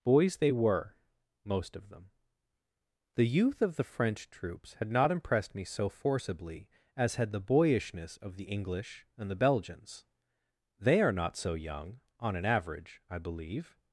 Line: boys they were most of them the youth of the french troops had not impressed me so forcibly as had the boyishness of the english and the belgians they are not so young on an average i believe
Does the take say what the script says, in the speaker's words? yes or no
yes